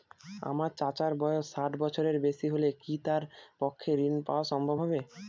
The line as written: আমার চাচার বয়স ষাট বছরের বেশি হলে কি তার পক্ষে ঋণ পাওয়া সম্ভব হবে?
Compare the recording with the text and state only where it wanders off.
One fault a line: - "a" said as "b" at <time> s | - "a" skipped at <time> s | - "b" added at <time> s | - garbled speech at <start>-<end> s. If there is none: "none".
none